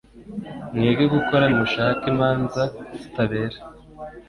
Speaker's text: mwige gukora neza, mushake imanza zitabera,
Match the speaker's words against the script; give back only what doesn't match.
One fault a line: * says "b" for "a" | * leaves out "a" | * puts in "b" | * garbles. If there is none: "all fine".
* leaves out "neza"